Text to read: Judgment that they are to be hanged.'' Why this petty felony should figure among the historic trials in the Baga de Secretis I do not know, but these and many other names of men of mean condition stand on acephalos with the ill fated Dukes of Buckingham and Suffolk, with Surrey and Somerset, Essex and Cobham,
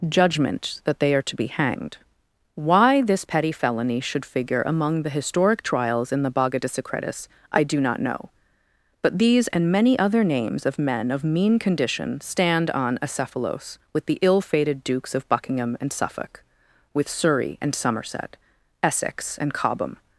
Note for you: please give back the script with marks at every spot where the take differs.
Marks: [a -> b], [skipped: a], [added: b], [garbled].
Judgment that they are to be hanged.'' Why this petty felony should figure among the historic trials in the Baga de Secretis I do not know, but these and many other names of men of mean condition stand on acephalos with the ill fated Dukes of Buckingham and Suffolk, with Surrey and Somerset, Essex and Cobham,